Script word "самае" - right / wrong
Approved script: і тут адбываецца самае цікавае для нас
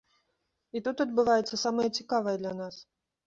right